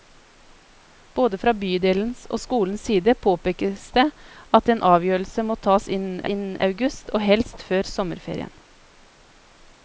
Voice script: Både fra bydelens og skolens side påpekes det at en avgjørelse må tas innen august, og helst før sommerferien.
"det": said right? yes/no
yes